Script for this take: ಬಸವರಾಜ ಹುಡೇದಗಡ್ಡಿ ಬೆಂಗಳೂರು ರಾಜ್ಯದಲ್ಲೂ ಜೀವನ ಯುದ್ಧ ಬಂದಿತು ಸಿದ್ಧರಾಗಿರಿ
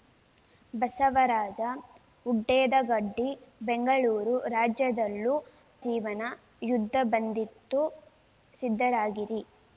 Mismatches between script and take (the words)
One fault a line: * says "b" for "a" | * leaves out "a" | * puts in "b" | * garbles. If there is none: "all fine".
all fine